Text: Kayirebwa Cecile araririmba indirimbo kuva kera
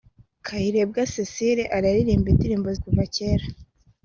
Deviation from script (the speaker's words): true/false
false